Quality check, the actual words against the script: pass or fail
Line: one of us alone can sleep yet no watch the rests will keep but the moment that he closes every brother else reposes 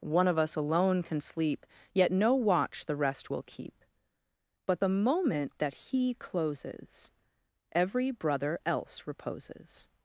fail